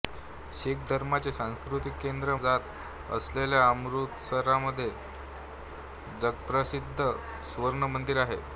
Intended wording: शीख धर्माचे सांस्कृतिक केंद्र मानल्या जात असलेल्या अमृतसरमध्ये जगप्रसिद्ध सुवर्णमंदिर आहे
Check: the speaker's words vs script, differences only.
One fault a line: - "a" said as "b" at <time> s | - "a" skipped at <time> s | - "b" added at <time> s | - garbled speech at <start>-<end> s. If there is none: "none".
- "मानल्या" skipped at 2.4 s